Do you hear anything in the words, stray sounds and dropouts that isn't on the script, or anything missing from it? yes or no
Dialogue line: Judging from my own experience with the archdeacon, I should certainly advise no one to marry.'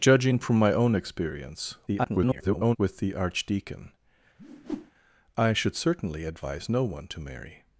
yes